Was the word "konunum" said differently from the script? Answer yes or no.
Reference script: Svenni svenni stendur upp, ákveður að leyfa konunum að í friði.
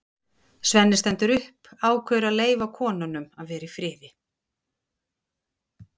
no